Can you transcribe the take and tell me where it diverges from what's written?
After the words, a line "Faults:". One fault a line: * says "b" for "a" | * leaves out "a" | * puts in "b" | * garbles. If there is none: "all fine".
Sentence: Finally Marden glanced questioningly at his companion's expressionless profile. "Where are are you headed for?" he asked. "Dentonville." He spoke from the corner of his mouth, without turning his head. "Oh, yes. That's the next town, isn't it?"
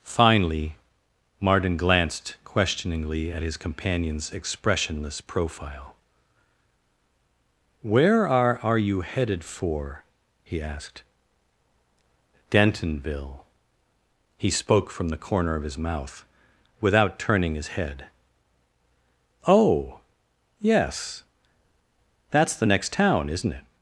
Finally Marden glanced questioningly at his companion's expressionless profile. "Where are are you headed for?" he asked. "Dentonville." He spoke from the corner of his mouth, without turning his head. "Oh, yes. That's the next town, isn't it?"
Faults:
all fine